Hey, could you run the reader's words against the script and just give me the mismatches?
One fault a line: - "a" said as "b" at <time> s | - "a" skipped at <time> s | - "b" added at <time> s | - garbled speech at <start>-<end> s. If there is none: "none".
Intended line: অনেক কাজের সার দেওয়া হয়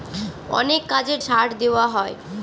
none